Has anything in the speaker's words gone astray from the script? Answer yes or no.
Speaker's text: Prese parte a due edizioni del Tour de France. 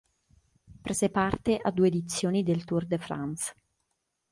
no